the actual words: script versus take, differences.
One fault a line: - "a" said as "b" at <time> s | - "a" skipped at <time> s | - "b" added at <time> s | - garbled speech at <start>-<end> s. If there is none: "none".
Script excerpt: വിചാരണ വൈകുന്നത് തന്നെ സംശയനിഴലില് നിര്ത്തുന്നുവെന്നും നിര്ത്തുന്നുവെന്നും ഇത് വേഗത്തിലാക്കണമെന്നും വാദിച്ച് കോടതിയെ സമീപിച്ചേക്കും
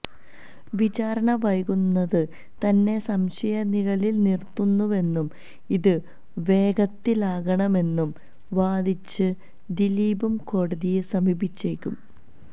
- "നിര്ത്തുന്നുവെന്നും" skipped at 5.3 s
- "ദിലീപും" added at 9.7 s